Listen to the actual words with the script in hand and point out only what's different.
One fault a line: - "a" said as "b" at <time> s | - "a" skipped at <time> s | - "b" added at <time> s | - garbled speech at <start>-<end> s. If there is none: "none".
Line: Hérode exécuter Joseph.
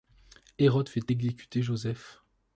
- "fait" added at 0.9 s